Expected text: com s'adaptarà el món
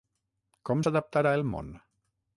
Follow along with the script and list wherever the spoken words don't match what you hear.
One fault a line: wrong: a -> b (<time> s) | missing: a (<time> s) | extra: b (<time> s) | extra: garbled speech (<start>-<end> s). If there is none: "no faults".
no faults